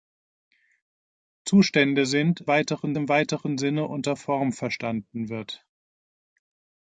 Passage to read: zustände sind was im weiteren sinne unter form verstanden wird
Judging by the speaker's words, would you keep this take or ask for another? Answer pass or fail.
fail